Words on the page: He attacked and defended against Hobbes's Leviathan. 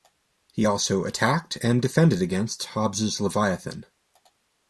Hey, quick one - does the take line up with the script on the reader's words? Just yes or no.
no